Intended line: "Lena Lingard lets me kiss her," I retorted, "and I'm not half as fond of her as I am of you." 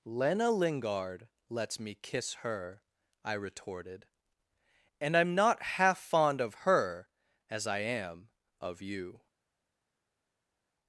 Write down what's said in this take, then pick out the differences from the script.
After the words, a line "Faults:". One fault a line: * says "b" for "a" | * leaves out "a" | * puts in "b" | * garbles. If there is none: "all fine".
"Lena Lingard lets me kiss her," I retorted, "and I'm not half fond of her as I am of you."
Faults:
* leaves out "as"